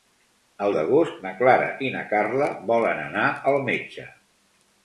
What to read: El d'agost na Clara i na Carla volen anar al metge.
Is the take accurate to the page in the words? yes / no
yes